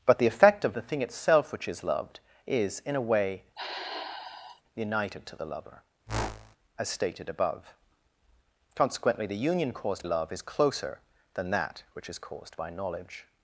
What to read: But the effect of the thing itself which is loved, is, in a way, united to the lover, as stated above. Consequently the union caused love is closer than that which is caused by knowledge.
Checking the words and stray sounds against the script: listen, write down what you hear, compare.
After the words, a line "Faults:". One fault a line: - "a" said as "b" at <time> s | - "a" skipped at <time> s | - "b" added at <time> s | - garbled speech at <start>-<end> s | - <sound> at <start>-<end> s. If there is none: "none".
But the effect of the thing itself which is loved, is, in a way, united to the lover, as stated above. Consequently the union caused love is closer than that which is caused by knowledge.
Faults:
- sigh at 3.5-4.6 s
- whoosh at 6.1-6.6 s